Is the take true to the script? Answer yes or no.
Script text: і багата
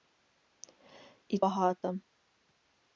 yes